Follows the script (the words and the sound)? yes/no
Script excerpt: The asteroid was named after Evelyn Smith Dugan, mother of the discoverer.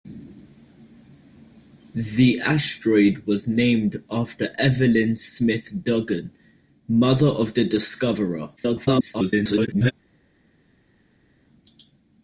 no